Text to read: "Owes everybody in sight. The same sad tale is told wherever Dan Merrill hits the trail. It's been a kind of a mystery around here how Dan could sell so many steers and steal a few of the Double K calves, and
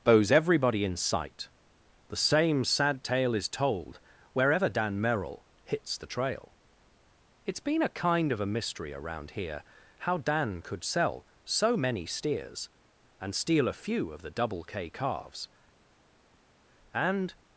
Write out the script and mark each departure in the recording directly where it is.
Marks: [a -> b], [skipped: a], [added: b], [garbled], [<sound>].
["Owes -> Bows] everybody in sight. The same sad tale is told wherever Dan Merrill hits the trail. It's been a kind of a mystery around here how Dan could sell so many steers and steal a few of the Double K calves, and